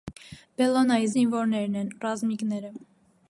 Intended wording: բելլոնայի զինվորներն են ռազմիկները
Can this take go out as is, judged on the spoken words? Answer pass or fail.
pass